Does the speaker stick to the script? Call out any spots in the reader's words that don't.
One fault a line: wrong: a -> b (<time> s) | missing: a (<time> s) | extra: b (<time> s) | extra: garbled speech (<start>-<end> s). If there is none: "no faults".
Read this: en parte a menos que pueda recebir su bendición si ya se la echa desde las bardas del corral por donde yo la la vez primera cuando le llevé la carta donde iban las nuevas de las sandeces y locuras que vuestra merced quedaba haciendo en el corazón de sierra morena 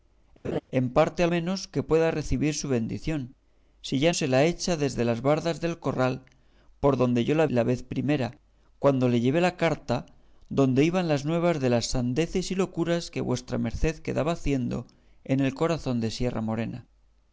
no faults